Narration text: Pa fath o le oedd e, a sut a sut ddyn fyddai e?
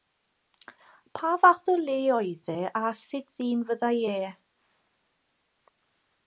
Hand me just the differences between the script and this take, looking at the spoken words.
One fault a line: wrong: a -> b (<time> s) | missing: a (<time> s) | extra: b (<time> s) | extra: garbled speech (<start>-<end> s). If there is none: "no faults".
missing: a sut (3.3 s)